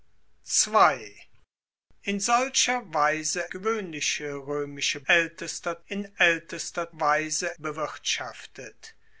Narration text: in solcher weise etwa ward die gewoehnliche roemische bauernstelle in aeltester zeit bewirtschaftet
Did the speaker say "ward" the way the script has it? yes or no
no